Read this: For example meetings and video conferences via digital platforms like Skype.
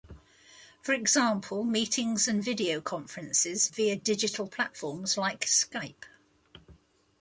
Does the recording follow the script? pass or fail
pass